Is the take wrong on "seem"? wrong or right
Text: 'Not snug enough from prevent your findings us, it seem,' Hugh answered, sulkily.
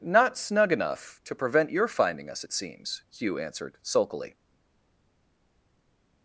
wrong